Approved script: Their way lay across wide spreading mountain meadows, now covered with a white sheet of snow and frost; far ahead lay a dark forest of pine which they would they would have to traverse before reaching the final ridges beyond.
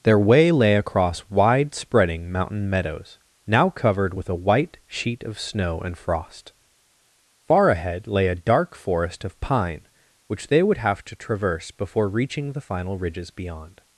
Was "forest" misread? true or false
false